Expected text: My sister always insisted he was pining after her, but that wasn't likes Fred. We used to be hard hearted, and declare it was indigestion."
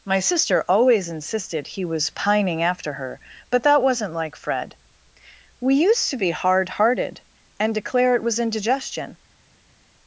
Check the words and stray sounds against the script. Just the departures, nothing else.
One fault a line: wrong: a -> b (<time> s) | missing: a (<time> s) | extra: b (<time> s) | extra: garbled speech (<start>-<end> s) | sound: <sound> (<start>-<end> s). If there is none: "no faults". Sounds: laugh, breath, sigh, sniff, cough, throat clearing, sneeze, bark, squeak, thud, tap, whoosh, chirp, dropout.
wrong: likes -> like (4.2 s)